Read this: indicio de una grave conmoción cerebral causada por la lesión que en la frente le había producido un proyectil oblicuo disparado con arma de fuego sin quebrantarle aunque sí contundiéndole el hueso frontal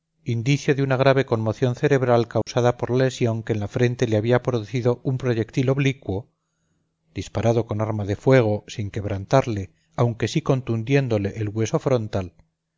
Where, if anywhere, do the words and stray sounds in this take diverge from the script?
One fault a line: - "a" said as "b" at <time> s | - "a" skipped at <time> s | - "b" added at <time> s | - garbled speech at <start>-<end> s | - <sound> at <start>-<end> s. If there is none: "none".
- dropout at 2.4-2.5 s